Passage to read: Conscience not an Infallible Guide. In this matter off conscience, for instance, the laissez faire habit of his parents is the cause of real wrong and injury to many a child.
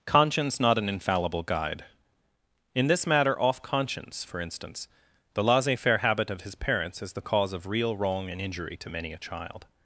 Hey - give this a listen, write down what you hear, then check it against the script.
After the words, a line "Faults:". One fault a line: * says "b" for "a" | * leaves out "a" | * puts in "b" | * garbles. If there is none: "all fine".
Conscience not an Infallible Guide. In this matter off conscience, for instance, the laissez faire habit of his parents is the cause of real wrong and injury to many a child.
Faults:
all fine